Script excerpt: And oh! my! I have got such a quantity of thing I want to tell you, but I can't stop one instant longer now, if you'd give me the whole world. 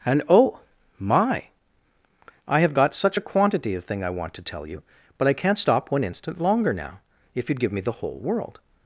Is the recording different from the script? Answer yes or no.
no